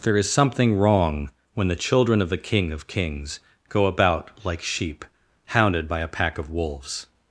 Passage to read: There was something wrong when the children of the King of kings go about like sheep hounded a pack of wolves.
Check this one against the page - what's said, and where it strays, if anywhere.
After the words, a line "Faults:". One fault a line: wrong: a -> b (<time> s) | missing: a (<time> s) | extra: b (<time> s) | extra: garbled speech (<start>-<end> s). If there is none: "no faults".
There is something wrong when the children of the King of kings go about like sheep hounded by a pack of wolves.
Faults:
wrong: was -> is (0.2 s)
extra: by (5.9 s)